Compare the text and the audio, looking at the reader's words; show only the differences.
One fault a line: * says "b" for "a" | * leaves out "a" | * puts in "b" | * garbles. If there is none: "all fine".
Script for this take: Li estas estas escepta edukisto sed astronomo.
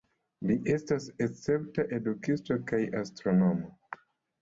* leaves out "estas"
* says "kaj" for "sed"